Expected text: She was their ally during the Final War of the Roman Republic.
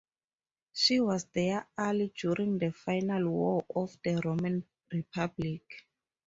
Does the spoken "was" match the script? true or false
true